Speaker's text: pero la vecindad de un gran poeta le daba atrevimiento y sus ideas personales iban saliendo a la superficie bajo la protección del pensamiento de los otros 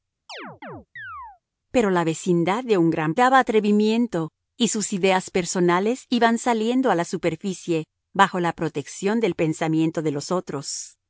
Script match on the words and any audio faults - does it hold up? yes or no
no